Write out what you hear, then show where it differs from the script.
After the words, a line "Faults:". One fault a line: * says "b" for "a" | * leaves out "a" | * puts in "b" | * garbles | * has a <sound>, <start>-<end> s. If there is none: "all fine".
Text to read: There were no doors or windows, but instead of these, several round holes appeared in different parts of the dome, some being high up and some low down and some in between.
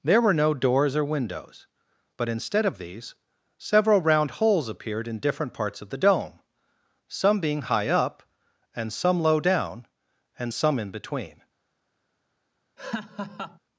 There were no doors or windows, but instead of these, several round holes appeared in different parts of the dome, some being high up and some low down and some in between.
Faults:
* has a laugh, 12.8-13.6 s